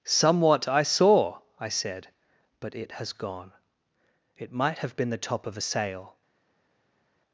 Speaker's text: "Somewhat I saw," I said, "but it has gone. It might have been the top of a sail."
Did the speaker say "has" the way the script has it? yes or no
yes